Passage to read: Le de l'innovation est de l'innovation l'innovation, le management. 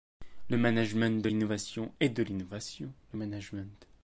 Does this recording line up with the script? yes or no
no